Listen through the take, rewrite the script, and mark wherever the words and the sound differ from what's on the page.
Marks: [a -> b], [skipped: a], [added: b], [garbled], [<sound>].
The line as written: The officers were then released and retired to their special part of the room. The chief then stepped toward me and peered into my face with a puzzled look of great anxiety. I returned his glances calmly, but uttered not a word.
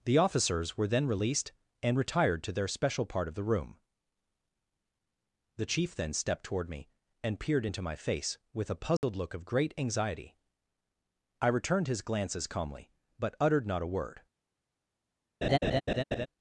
The officers were then released and retired to their special part of the room. The chief then stepped toward me and peered into my face with a puzzled [dropout] look of great anxiety. I returned his glances calmly, but uttered not a word. [laugh]